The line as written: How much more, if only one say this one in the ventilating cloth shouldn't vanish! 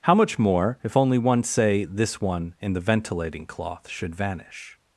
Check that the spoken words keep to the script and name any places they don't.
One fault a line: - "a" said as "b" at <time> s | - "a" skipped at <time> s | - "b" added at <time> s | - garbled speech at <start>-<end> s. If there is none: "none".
- "shouldn't" said as "should" at 3.9 s